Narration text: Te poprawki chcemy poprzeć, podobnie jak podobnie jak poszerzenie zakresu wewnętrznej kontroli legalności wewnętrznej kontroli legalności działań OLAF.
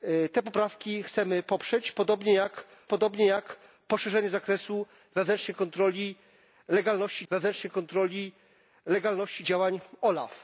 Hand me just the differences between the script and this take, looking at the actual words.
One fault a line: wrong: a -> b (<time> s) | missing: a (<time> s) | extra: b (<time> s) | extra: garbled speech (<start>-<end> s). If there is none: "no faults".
no faults